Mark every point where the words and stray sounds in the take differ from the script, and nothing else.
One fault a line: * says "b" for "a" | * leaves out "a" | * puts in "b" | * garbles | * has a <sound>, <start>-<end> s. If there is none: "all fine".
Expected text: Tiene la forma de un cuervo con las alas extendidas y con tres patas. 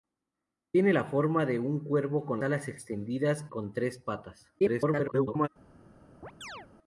* leaves out "las"
* leaves out "y"
* garbles
* has a chirp, 6.2-6.7 s